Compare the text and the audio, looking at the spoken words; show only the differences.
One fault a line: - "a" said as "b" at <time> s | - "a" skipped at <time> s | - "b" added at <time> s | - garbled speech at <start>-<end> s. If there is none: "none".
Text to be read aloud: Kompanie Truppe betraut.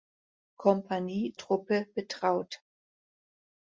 none